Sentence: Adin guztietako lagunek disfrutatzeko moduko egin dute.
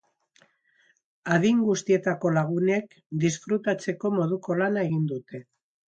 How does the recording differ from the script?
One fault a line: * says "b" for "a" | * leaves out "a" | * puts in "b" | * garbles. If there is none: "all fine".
* puts in "lana"